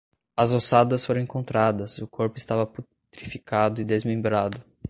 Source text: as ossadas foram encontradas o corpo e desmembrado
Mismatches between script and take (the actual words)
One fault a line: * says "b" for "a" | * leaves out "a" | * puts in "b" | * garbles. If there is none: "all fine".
* puts in "estava putrificado"